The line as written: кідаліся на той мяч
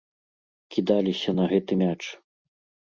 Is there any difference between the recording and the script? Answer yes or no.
yes